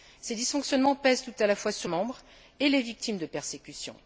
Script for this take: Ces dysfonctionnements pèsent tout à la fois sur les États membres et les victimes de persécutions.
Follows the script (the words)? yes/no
no